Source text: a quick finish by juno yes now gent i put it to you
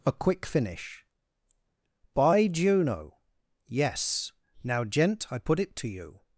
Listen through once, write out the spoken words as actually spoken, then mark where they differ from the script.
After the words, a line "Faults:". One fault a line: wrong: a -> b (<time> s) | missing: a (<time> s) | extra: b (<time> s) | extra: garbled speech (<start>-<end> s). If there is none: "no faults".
a quick finish by juno yes now gent i put it to you
Faults:
no faults